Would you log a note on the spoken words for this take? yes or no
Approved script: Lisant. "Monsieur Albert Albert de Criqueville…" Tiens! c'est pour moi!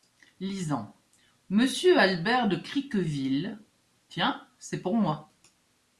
yes